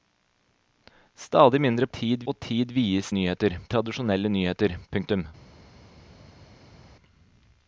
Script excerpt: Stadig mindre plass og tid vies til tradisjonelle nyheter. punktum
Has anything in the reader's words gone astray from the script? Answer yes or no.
yes